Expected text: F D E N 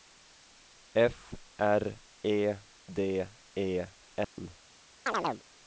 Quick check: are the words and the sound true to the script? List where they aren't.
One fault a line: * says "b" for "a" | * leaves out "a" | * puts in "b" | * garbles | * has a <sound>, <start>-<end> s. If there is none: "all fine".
* puts in "R E"
* has a dropout, 4.2-4.4 s
* has a chirp, 5.1-5.4 s